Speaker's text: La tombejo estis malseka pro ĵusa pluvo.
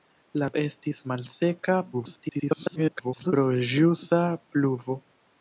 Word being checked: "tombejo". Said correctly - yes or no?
no